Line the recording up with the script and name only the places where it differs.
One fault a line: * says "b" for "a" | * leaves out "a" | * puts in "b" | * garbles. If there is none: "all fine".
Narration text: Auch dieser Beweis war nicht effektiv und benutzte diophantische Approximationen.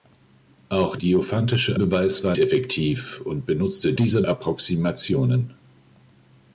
* says "diophantische" for "dieser"
* leaves out "nicht"
* says "dieser" for "diophantische"